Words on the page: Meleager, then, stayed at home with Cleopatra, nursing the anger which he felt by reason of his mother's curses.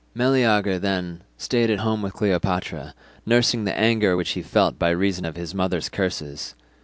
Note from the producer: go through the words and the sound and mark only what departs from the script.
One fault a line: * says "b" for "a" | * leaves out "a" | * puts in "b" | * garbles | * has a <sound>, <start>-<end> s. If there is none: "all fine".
all fine